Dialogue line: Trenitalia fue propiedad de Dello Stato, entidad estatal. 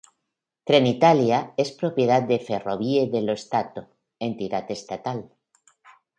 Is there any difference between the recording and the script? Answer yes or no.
yes